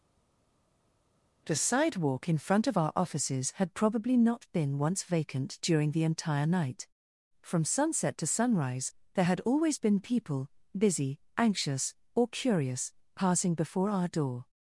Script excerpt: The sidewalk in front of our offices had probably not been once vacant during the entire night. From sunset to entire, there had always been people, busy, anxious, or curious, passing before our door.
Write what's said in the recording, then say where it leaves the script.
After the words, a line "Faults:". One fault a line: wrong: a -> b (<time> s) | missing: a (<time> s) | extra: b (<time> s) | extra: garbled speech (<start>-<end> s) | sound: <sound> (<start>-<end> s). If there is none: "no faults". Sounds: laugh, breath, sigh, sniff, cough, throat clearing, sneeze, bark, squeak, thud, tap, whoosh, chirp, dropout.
The sidewalk in front of our offices had probably not been once vacant during the entire night. From sunset to sunrise, there had always been people, busy, anxious, or curious, passing before our door.
Faults:
wrong: entire -> sunrise (8.3 s)